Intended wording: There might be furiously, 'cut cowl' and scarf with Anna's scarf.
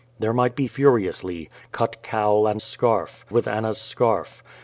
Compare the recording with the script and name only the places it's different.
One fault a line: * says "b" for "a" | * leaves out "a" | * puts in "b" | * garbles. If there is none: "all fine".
all fine